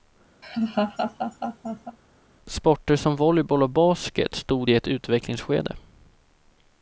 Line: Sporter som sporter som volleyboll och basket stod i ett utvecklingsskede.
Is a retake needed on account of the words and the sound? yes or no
yes